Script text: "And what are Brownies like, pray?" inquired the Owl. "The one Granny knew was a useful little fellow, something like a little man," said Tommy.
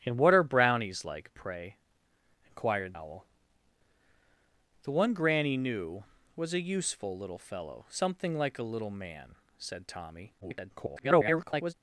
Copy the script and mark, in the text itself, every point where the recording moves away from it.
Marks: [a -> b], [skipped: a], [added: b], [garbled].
"And what are Brownies like, pray?" inquired [skipped: the] Owl. "The one Granny knew was a useful little fellow, something like a little man," said Tommy. [garbled]